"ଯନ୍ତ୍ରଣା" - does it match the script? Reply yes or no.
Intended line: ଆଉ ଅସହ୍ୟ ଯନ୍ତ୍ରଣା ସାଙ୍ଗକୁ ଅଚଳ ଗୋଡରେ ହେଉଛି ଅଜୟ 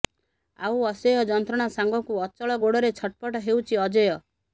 yes